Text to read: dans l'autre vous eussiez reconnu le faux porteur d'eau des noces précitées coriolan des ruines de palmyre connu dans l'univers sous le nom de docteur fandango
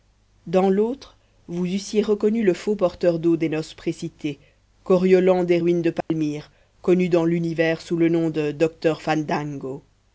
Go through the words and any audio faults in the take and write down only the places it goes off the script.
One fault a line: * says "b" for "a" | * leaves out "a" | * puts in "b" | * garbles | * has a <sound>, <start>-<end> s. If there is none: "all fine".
* has a dropout, 6.0-6.1 s